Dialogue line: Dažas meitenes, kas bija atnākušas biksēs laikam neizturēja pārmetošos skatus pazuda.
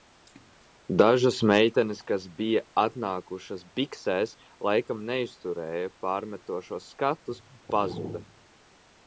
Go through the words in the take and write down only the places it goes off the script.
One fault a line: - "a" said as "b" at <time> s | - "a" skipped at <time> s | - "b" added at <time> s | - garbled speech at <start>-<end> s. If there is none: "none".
none